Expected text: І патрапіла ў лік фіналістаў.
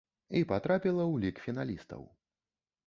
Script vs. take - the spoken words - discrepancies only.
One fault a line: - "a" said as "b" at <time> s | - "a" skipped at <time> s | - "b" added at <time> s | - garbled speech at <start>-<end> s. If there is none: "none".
none